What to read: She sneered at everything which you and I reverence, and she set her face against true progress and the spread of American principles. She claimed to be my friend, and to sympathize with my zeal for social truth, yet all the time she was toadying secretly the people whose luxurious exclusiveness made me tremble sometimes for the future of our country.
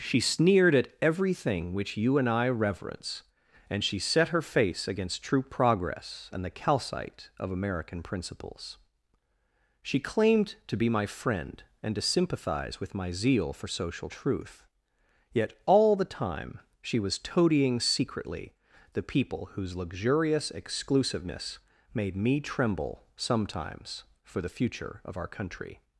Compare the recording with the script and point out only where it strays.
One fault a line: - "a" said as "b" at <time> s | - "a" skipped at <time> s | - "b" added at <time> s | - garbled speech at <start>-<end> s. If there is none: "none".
- "spread" said as "calcite" at 6.5 s